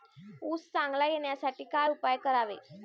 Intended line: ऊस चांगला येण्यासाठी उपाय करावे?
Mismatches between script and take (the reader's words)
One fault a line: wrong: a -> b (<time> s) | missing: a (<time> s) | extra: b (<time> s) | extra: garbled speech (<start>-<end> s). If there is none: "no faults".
extra: काय (1.6 s)